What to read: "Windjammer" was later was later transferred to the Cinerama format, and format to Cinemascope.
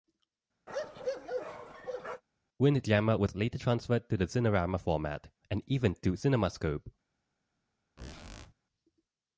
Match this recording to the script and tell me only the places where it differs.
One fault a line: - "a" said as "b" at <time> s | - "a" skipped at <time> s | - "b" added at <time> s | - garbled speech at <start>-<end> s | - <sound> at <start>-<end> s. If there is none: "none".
- bark at 0.7-2.2 s
- "was later" skipped at 3.6 s
- "format" said as "even" at 5.6 s
- squeak at 8.0-8.5 s